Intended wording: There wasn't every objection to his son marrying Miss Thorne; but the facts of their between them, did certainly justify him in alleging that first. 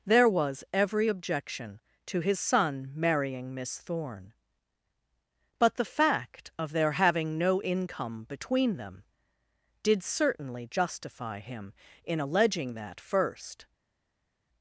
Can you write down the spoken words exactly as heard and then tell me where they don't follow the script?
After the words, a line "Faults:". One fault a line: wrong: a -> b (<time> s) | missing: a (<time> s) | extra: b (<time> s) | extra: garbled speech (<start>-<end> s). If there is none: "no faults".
There was every objection to his son marrying Miss Thorne; but the fact of their having no income between them, did certainly justify him in alleging that first.
Faults:
wrong: wasn't -> was (0.3 s)
wrong: facts -> fact (5.8 s)
extra: having no income (6.9 s)